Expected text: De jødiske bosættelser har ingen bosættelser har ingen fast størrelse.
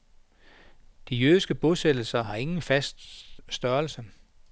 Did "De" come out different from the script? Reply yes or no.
no